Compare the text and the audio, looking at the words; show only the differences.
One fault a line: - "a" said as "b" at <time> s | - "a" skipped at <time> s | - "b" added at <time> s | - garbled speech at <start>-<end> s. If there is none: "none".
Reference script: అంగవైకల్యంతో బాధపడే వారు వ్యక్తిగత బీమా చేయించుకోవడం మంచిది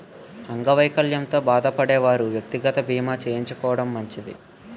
none